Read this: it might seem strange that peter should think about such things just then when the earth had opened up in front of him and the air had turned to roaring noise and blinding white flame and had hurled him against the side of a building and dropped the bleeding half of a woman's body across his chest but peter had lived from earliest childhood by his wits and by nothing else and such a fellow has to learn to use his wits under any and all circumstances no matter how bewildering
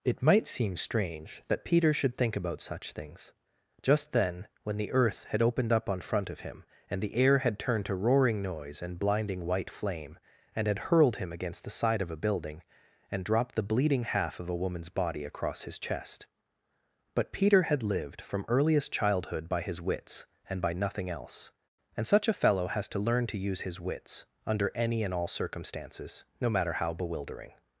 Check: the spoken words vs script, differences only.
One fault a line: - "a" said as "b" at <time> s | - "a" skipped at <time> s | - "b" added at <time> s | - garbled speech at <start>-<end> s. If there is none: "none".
- "in" said as "on" at 5.9 s